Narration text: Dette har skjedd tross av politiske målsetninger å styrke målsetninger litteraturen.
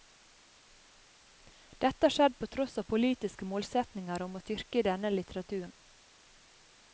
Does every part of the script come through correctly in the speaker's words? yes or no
no